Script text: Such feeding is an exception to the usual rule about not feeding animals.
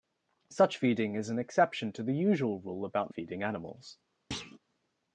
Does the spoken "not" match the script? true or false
false